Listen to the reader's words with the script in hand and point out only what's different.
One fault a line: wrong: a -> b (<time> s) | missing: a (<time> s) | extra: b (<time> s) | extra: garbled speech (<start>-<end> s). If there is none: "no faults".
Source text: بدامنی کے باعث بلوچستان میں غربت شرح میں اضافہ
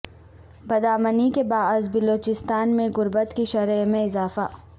extra: کی (3.3 s)